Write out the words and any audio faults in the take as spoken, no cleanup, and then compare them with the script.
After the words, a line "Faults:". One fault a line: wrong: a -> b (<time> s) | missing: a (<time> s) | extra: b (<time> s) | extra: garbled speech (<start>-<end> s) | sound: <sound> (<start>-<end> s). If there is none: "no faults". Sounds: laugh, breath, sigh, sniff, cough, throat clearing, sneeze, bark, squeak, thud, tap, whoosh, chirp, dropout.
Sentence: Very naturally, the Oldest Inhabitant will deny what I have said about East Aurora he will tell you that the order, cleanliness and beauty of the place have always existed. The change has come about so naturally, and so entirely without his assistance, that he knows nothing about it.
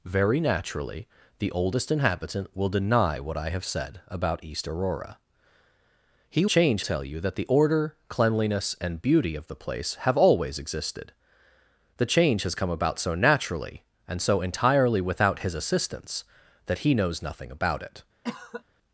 Very naturally, the Oldest Inhabitant will deny what I have said about East Aurora he change tell you that the order, cleanliness and beauty of the place have always existed. The change has come about so naturally, and so entirely without his assistance, that he knows nothing about it.
Faults:
wrong: will -> change (6.4 s)
sound: cough (18.2-18.6 s)